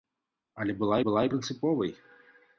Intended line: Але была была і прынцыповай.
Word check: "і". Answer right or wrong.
right